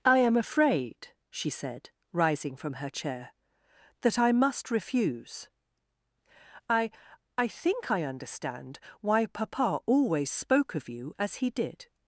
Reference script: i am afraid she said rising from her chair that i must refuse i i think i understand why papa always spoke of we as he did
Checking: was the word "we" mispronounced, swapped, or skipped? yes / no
yes